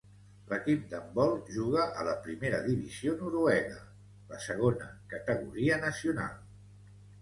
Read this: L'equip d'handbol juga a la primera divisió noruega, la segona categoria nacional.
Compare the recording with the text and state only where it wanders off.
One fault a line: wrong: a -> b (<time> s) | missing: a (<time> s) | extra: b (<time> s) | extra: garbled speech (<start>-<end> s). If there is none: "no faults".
no faults